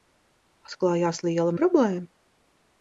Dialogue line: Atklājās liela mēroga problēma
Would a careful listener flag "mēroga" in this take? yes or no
yes